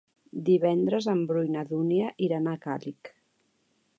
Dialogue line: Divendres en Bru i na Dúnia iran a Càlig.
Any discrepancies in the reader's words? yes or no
no